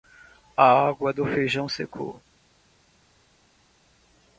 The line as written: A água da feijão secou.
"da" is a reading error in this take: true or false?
true